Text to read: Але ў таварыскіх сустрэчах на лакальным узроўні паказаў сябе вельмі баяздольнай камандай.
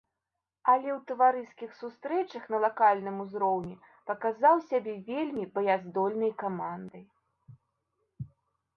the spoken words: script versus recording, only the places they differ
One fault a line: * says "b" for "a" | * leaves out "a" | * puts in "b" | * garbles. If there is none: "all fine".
all fine